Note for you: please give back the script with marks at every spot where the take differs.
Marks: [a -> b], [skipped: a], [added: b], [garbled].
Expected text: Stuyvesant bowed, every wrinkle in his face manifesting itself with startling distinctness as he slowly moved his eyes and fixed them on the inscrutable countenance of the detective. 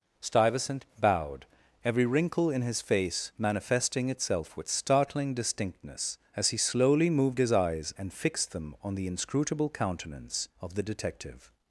Stuyvesant bowed, every wrinkle in his face manifesting itself with startling distinctness as he slowly moved his eyes and fixed them on the inscrutable countenance of the detective.